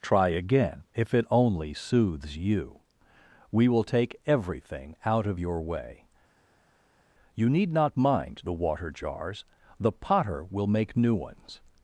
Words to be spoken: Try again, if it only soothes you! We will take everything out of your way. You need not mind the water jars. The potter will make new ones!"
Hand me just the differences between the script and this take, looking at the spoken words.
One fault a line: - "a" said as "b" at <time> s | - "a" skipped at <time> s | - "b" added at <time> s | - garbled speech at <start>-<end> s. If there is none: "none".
none